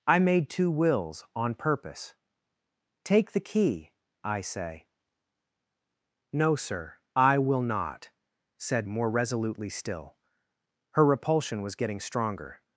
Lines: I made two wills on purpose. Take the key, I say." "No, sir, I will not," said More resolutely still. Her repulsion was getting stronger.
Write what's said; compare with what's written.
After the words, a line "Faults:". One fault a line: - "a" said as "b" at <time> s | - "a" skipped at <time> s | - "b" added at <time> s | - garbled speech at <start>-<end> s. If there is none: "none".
I made two wills on purpose. Take the key, I say." "No, sir, I will not," said More resolutely still. Her repulsion was getting stronger.
Faults:
none